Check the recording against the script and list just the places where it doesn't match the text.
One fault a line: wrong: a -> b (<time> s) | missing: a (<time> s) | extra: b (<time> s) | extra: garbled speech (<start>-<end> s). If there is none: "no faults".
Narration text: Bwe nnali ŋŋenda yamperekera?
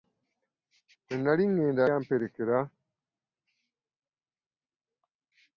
no faults